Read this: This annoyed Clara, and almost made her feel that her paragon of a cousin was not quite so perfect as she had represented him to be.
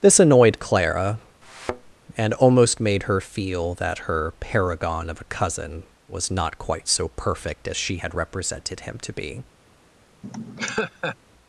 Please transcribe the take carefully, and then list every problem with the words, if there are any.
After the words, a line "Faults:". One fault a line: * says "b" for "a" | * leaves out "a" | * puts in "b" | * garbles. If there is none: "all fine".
This annoyed Clara, and almost made her feel that her paragon of a cousin was not quite so perfect as she had represented him to be.
Faults:
all fine